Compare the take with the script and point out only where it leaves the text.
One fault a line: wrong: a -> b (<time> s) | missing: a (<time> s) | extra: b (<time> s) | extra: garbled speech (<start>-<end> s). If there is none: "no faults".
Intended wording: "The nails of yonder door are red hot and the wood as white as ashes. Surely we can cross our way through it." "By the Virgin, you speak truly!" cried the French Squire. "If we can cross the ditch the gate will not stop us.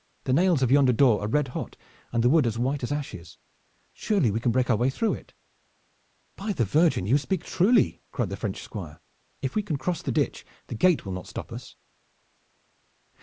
wrong: cross -> break (4.5 s)